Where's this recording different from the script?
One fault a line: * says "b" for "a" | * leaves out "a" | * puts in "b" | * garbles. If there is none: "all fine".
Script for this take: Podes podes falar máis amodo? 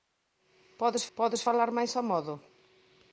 all fine